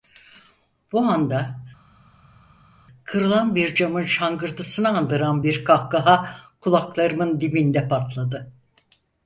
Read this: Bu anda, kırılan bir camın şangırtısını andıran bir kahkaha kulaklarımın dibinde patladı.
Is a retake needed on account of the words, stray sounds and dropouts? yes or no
no